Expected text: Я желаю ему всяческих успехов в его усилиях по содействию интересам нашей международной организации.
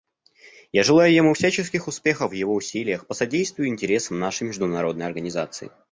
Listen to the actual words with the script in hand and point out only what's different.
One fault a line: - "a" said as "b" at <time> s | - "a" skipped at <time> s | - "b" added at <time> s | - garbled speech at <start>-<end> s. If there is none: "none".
none